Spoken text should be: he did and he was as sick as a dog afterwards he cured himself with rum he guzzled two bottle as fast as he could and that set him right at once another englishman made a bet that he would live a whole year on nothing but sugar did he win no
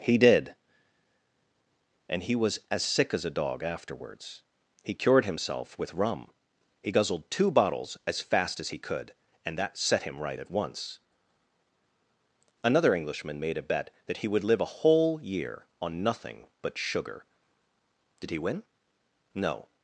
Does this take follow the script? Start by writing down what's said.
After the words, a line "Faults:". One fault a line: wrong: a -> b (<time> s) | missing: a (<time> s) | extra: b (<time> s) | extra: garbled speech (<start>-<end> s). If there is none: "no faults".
he did and he was as sick as a dog afterwards he cured himself with rum he guzzled two bottles as fast as he could and that set him right at once another englishman made a bet that he would live a whole year on nothing but sugar did he win no
Faults:
wrong: bottle -> bottles (7.5 s)